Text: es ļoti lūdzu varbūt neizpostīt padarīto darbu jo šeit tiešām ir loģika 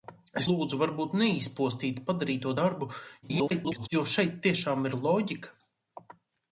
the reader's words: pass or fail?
fail